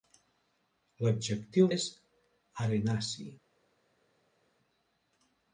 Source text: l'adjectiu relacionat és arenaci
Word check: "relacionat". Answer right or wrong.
wrong